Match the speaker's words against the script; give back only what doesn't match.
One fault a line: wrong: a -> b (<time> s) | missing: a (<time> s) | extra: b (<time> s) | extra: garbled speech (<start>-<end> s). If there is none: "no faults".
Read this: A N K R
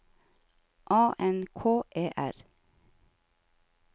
extra: E (2.0 s)